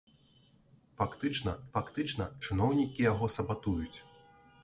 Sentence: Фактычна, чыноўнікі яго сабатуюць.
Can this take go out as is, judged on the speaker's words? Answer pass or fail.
fail